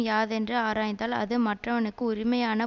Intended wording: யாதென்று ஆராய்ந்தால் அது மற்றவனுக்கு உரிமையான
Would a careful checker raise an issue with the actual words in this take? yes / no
no